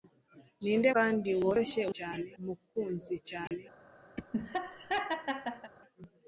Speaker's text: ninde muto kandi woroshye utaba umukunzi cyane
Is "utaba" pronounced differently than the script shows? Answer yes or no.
yes